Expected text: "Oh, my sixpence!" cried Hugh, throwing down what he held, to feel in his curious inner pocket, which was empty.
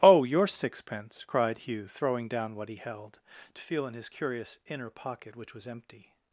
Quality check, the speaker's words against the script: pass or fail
fail